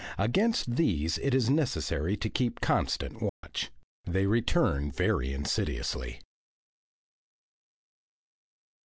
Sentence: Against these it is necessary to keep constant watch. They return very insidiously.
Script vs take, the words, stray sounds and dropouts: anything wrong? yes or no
yes